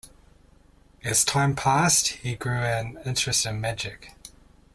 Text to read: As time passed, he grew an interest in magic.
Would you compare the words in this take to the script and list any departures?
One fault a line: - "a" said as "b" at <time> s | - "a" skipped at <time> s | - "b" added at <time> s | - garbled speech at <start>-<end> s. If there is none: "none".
none